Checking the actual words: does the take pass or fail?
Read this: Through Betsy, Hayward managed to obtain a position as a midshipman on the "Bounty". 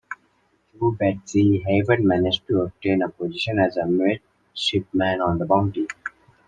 pass